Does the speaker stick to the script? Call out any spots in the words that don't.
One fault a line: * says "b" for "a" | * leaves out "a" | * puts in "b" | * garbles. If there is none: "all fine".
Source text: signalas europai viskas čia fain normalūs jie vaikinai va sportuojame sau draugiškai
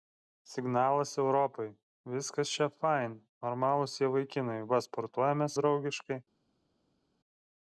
* leaves out "sau"